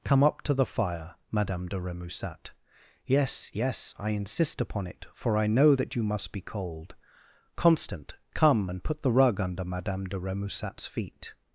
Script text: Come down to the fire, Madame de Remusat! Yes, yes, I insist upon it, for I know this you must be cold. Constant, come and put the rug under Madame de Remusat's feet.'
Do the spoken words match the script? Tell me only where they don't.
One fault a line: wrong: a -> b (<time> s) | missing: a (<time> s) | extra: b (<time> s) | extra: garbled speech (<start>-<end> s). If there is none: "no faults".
wrong: down -> up (0.2 s)
wrong: this -> that (5.7 s)